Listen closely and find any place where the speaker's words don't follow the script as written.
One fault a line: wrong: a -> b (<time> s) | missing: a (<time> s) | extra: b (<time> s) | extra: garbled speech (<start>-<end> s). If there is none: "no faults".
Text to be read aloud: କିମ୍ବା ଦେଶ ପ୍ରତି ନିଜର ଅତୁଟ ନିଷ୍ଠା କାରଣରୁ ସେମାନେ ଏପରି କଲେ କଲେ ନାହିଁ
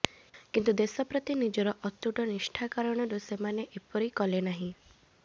wrong: କିମ୍ବା -> କିନ୍ତୁ (0.5 s)
missing: କଲେ (4.4 s)